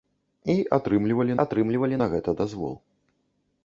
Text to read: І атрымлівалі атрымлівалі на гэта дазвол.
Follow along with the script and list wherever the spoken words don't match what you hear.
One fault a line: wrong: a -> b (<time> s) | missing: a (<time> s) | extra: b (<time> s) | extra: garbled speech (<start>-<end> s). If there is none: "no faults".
no faults